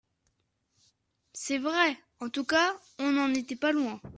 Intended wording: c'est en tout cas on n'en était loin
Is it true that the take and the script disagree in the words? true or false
true